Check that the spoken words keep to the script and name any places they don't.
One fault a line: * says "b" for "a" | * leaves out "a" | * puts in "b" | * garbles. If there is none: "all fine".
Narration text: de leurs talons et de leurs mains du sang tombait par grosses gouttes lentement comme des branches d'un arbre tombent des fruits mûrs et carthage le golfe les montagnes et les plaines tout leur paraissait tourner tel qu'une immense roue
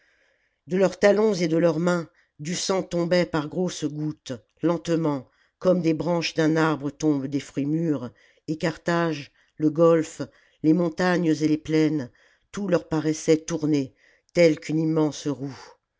all fine